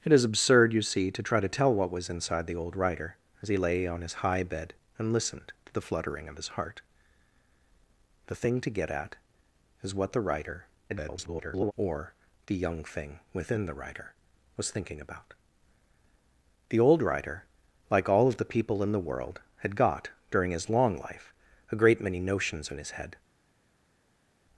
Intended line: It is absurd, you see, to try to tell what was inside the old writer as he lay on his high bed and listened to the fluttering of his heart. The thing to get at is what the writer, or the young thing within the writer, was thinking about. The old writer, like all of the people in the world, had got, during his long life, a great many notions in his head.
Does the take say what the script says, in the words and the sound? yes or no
no